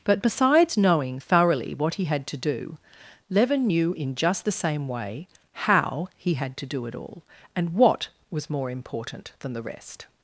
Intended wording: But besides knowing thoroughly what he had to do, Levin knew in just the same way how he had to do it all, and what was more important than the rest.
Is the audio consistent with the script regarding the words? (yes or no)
yes